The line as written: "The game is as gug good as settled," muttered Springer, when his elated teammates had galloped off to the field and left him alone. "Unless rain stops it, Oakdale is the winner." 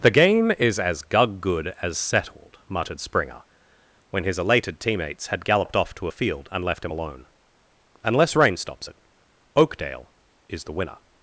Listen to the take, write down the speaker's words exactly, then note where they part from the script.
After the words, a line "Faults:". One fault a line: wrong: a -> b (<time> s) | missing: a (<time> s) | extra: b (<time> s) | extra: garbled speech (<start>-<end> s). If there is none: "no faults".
"The game is as gug good as settled," muttered Springer, when his elated teammates had galloped off to a field and left him alone. "Unless rain stops it, Oakdale is the winner."
Faults:
wrong: the -> a (6.0 s)